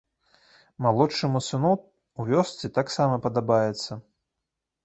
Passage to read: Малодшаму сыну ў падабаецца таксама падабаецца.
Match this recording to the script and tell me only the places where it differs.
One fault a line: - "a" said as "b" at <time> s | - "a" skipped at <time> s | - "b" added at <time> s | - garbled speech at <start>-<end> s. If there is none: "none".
- "падабаецца" said as "вёсцы" at 2.4 s